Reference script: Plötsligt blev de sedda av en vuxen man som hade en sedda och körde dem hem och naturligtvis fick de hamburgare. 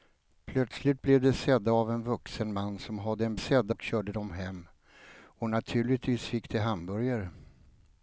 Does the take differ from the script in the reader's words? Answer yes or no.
no